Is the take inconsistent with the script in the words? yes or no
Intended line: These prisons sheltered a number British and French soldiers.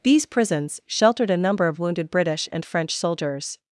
yes